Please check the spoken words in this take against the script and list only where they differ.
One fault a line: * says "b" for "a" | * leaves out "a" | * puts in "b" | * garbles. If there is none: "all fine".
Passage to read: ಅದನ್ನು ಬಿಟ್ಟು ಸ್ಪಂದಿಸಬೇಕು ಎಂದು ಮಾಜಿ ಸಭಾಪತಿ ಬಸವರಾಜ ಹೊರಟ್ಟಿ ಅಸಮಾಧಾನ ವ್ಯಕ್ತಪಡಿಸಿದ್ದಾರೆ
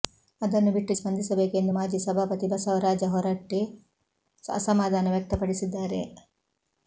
all fine